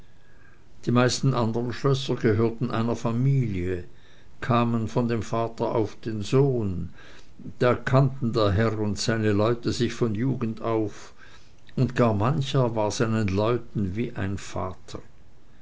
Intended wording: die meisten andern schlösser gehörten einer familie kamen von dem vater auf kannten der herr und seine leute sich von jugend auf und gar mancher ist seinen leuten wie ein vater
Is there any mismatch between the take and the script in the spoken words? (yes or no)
yes